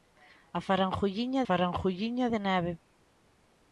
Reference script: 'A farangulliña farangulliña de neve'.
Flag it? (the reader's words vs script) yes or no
no